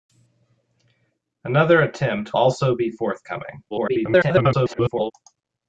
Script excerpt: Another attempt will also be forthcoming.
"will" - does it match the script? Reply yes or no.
no